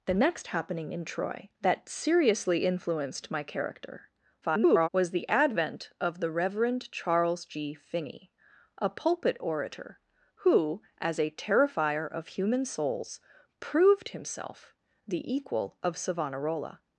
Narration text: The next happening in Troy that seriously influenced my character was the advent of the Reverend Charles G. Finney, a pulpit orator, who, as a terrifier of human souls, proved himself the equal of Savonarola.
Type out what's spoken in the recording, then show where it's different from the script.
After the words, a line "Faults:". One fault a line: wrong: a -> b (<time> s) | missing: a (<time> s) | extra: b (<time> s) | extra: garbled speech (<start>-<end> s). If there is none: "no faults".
The next happening in Troy that seriously influenced my character [garbled] was the advent of the Reverend Charles G. Finney, a pulpit orator, who, as a terrifier of human souls, proved himself the equal of Savonarola.
Faults:
extra: garbled speech (4.4-4.9 s)